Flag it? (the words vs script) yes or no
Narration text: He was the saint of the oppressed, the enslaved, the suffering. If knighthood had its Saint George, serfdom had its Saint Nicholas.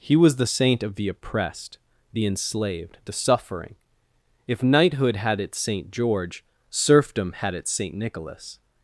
no